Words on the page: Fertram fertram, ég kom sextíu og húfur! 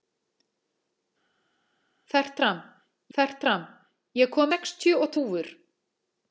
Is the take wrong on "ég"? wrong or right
right